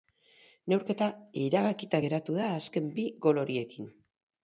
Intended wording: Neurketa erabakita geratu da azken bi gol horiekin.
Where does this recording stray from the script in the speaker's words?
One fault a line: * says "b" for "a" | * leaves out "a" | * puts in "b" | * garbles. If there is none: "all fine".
all fine